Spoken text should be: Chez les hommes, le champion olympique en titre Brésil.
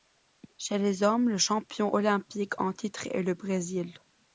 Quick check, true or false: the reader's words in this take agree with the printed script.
false